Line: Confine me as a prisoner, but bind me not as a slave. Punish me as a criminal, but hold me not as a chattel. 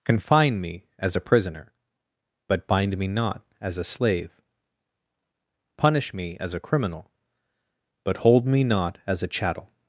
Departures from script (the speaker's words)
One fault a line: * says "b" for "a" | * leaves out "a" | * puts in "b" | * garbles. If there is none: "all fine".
all fine